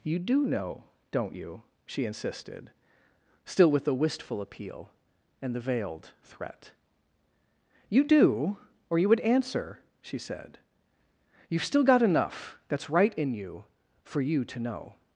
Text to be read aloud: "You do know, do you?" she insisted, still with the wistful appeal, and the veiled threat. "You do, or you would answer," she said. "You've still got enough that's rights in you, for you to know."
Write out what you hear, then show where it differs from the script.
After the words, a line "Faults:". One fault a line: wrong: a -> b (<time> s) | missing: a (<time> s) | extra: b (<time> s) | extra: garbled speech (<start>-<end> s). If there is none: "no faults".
"You do know, don't you?" she insisted, still with the wistful appeal, and the veiled threat. "You do, or you would answer," she said. "You've still got enough that's right in you, for you to know."
Faults:
wrong: do -> don't (1.1 s)
wrong: rights -> right (12.9 s)